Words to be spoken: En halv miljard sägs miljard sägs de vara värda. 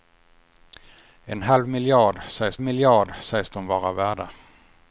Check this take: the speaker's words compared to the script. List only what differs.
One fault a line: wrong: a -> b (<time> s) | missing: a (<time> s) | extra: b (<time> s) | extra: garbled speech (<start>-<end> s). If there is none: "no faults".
no faults